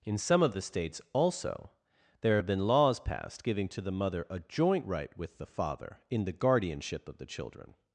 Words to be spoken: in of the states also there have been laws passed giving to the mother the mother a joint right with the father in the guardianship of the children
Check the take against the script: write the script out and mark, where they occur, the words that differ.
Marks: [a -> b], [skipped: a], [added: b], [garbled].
in [added: some] of the states also there have been laws passed giving to the mother [skipped: the mother] a joint right with the father in the guardianship of the children